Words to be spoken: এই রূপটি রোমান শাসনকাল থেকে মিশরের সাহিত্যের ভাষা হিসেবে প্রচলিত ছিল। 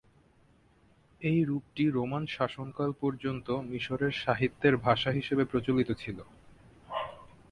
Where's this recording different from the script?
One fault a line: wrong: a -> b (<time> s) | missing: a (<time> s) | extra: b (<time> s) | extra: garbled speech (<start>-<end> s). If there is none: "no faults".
wrong: থেকে -> পর্যন্ত (3.0 s)